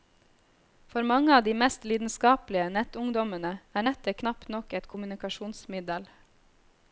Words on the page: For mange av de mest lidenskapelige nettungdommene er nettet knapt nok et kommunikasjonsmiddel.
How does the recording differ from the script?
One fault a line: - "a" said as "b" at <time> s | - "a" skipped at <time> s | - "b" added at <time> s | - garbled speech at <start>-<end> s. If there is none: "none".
none